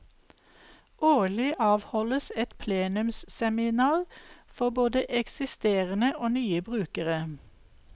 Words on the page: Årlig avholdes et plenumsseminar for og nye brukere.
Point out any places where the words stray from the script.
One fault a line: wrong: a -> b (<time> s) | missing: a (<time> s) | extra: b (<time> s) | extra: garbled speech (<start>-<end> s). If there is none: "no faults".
extra: både eksisterende (4.7 s)